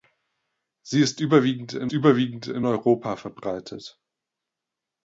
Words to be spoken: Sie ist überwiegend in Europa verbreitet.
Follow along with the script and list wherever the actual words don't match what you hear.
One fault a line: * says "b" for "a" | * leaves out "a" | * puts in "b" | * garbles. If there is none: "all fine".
* puts in "überwiegend in"